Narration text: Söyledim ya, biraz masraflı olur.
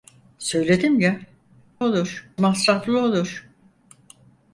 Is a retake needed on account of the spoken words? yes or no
yes